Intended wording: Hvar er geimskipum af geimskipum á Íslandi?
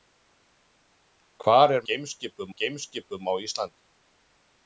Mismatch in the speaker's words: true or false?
false